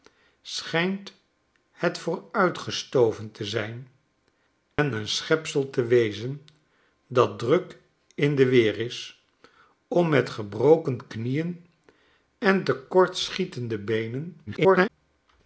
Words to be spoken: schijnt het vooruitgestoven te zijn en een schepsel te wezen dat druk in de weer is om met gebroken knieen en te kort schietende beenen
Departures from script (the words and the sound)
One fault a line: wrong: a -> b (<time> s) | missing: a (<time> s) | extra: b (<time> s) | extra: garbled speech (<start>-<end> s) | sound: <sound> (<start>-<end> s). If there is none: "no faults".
sound: dropout (4.7-4.8 s)
extra: garbled speech (14.5-14.9 s)